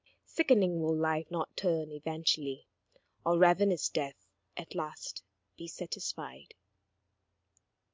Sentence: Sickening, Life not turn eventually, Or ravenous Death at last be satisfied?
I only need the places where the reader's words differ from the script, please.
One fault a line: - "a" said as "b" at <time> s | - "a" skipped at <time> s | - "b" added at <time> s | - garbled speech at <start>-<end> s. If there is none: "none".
- "will" added at 0.8 s